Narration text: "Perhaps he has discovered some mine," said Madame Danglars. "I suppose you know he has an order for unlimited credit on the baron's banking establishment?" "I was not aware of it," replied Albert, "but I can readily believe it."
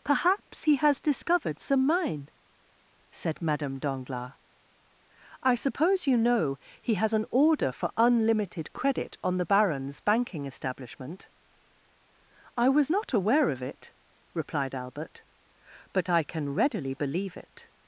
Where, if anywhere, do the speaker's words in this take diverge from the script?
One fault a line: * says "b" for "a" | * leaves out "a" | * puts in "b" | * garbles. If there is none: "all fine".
all fine